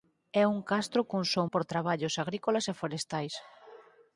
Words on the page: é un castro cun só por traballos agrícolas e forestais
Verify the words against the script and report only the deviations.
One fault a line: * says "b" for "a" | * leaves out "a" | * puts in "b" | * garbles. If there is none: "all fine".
all fine